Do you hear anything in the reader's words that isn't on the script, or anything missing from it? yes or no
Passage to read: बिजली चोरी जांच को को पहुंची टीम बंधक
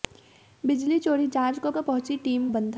no